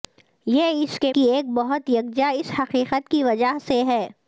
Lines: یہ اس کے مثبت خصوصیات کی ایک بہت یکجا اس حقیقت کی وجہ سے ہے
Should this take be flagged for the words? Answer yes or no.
yes